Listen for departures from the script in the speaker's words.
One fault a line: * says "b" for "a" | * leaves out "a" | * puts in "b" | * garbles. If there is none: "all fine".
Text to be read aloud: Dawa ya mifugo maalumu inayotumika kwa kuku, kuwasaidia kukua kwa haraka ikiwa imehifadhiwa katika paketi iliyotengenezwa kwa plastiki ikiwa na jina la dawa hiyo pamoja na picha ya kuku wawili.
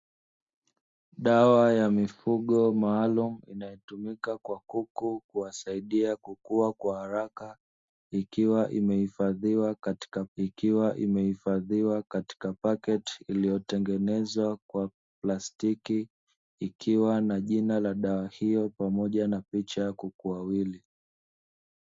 * puts in "ikiwa imehifadhiwa katika"